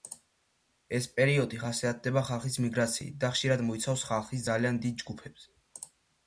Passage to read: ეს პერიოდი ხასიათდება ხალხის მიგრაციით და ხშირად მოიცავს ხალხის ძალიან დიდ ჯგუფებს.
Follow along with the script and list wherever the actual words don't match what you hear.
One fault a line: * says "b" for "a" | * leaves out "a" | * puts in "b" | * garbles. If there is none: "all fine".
all fine